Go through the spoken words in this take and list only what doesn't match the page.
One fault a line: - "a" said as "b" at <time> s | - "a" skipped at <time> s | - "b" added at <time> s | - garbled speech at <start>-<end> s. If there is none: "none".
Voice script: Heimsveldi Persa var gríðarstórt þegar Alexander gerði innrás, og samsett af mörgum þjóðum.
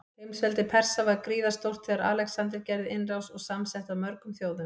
none